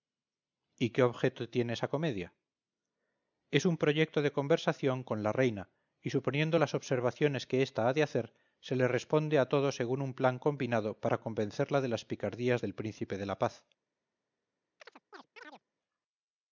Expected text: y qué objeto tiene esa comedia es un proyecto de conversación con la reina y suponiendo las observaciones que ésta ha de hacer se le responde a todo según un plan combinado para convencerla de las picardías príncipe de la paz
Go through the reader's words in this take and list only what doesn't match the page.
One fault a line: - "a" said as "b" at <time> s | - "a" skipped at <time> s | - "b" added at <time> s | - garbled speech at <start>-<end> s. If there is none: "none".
- "del" added at 12.6 s